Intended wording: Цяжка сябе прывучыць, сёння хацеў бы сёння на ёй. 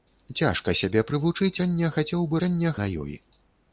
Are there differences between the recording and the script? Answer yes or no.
no